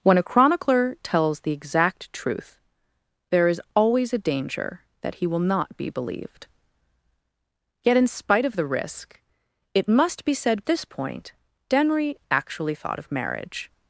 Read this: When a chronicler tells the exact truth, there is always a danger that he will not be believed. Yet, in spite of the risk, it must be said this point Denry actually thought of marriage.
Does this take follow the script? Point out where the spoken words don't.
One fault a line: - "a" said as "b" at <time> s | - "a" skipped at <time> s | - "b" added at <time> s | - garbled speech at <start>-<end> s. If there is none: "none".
none